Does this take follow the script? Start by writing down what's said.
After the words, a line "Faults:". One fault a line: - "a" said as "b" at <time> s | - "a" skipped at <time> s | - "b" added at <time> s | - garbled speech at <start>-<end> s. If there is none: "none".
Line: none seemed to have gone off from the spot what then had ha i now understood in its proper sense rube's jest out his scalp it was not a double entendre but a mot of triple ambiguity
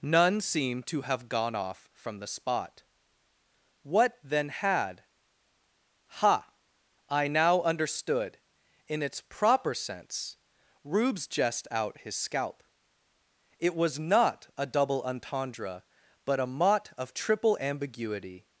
none seemed to have gone off from the spot what then had ha i now understood in its proper sense rube's jest out his scalp it was not a double entendre but a mot of triple ambiguity
Faults:
none